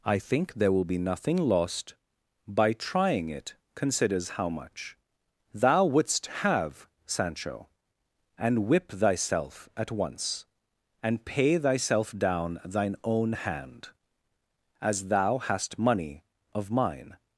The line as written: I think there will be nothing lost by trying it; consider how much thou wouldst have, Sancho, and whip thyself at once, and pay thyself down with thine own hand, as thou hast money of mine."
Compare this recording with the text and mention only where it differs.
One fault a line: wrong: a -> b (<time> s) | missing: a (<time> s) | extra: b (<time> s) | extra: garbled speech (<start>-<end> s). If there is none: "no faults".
wrong: consider -> considers (3.8 s)
missing: with (12.6 s)